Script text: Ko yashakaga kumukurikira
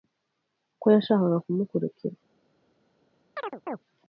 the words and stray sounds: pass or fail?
fail